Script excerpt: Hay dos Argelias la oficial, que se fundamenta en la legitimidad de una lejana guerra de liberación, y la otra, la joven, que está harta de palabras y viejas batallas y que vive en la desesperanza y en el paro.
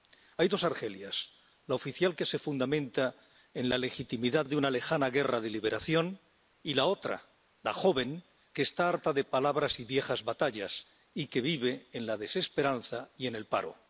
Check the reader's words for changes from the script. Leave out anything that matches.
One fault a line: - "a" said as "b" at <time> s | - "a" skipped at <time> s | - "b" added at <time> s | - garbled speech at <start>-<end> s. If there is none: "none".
none